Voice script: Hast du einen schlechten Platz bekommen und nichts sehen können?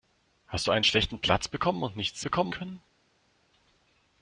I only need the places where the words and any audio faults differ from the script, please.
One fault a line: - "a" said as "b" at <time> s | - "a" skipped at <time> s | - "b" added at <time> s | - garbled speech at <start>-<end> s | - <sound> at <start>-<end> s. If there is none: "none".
- "sehen" said as "bekommen" at 2.2 s